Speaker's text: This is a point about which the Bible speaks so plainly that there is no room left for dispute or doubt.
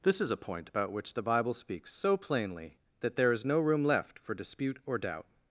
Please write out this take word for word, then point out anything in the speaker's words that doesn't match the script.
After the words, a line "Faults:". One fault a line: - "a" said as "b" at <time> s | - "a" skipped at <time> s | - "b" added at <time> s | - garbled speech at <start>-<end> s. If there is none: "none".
This is a point about which the Bible speaks so plainly that there is no room left for dispute or doubt.
Faults:
none